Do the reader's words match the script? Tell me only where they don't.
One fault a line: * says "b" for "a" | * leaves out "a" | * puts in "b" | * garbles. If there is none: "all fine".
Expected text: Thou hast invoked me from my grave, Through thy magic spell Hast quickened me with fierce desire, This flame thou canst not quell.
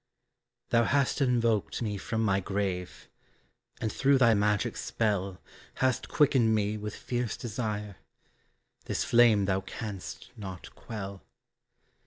* puts in "And"